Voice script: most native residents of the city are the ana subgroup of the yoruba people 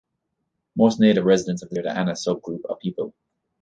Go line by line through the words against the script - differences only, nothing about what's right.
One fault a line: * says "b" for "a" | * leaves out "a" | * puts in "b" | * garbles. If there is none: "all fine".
* leaves out "city"
* leaves out "the yoruba"